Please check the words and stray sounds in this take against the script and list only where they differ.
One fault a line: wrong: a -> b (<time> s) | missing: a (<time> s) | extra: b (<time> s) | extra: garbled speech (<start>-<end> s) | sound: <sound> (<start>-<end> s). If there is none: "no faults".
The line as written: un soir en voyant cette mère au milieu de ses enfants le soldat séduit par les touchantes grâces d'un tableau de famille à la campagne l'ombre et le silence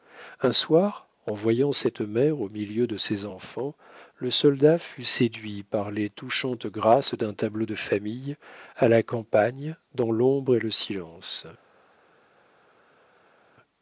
extra: fut (4.8 s)
extra: dans (10.0 s)